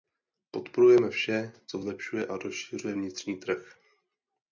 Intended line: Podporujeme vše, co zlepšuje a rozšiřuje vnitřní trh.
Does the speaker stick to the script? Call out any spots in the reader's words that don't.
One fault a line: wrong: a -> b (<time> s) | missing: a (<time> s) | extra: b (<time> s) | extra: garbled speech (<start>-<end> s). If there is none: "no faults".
no faults